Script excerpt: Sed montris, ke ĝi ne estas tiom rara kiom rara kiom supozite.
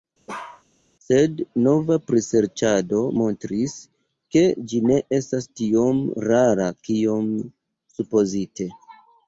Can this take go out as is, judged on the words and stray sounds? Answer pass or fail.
fail